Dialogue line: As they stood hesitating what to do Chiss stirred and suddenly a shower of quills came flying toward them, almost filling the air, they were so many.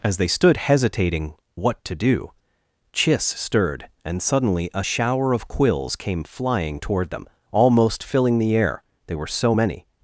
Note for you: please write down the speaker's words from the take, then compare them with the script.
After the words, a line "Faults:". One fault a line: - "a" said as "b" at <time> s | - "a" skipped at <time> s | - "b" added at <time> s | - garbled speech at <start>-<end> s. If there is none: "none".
As they stood hesitating what to do Chiss stirred and suddenly a shower of quills came flying toward them, almost filling the air, they were so many.
Faults:
none